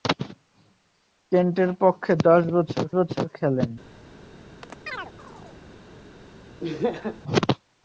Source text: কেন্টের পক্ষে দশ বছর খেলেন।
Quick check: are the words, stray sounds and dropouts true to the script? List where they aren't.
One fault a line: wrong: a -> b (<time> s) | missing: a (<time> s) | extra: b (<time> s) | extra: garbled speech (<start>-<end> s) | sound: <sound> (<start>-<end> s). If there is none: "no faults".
extra: বছর (3.0 s)
sound: chirp (4.6-5.6 s)
sound: laugh (6.6-7.2 s)